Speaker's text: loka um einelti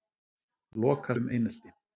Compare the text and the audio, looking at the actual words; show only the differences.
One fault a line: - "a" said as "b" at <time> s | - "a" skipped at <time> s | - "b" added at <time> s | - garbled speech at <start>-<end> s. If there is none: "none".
none